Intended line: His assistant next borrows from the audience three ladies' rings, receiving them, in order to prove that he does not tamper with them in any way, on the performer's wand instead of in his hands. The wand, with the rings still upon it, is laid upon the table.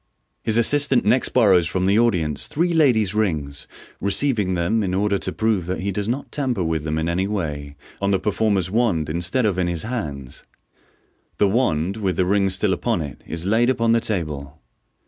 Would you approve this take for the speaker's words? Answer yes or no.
yes